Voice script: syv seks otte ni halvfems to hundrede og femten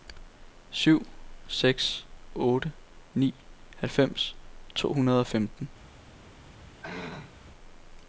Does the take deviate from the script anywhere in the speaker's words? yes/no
no